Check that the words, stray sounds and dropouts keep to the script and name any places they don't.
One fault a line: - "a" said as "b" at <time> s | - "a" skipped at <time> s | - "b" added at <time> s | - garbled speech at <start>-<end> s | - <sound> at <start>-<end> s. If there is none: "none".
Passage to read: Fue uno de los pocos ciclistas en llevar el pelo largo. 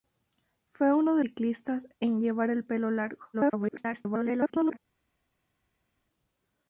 - "los pocos" skipped at 1.2 s
- garbled speech at 3.3-4.8 s